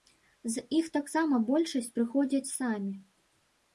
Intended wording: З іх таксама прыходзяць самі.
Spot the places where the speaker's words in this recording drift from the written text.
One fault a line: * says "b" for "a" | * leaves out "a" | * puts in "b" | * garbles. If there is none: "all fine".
* puts in "большасць"